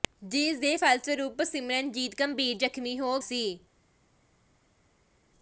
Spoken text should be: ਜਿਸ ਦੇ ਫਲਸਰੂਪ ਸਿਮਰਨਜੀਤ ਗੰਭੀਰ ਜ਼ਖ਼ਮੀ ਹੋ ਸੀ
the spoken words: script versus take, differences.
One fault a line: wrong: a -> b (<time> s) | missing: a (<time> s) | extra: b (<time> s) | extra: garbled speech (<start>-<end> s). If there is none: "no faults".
no faults